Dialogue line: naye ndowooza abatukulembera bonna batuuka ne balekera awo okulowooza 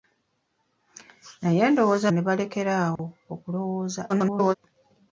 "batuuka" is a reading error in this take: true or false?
true